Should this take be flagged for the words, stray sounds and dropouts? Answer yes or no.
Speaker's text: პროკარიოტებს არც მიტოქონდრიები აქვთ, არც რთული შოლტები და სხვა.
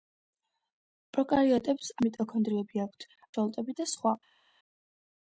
yes